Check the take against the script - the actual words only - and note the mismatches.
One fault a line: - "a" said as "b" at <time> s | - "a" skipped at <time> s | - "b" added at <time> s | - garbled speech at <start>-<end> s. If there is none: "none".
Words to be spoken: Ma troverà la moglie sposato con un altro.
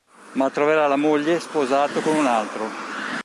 none